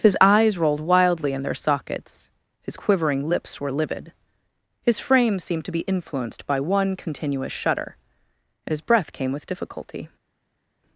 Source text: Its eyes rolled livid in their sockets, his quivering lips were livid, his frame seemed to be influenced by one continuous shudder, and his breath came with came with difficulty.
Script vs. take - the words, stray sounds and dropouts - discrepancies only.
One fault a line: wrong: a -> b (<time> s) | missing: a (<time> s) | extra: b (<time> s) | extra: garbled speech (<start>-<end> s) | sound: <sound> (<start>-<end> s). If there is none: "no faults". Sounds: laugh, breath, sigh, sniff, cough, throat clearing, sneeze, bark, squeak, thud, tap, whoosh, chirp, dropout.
wrong: Its -> His (0.0 s)
wrong: livid -> wildly (0.8 s)
missing: came with (9.5 s)